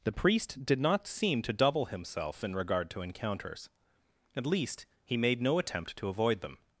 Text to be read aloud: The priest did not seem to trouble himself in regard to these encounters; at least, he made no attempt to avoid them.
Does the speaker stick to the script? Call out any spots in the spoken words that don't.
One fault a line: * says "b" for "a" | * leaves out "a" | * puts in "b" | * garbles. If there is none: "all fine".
* says "double" for "trouble"
* leaves out "these"